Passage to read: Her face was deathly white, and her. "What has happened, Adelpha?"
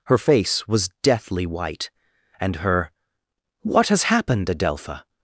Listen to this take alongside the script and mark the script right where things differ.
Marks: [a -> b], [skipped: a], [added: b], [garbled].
Her face was deathly white, and her. "What has happened, Adelpha?"